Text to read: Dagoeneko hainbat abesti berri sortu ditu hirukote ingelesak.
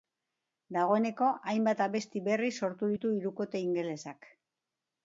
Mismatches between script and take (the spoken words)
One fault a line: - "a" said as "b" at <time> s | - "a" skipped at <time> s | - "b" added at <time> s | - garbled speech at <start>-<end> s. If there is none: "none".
none